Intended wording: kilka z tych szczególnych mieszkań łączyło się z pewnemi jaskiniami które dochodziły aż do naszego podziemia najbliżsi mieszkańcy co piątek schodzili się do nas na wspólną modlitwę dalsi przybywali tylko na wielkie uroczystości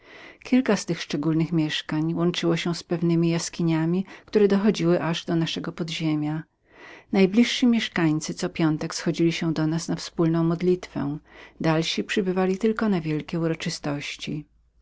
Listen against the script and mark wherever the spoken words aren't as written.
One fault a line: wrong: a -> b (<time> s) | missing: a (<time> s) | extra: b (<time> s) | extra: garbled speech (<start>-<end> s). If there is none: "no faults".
no faults